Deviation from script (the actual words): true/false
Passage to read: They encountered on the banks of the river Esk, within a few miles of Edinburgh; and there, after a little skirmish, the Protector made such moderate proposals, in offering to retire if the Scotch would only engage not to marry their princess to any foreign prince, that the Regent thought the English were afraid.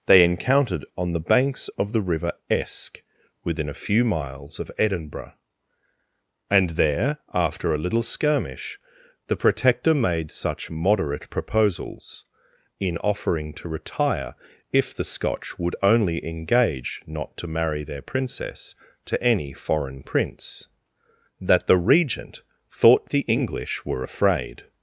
false